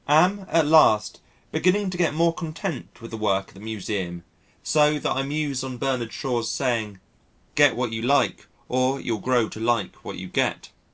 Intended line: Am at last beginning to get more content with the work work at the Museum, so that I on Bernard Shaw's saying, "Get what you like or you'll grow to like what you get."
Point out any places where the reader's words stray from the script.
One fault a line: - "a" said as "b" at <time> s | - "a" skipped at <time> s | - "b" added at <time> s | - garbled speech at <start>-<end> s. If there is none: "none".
- "work" skipped at 3.5 s
- "muse" added at 5.2 s